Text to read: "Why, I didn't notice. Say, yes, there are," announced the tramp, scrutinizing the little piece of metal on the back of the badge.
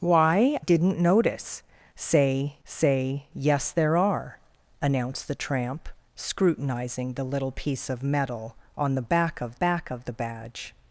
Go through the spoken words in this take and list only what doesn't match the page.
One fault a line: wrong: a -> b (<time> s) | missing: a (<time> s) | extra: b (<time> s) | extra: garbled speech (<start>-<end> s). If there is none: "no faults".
missing: I (0.6 s)
extra: say (2.6 s)
extra: back of (9.5 s)